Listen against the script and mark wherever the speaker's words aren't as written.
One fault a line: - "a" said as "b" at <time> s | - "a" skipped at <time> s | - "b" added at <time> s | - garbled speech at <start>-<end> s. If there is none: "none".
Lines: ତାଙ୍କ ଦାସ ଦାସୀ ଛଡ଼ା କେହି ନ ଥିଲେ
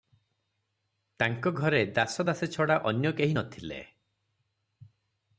- "ଘରେ" added at 1.5 s
- "ଅନ୍ୟ" added at 2.8 s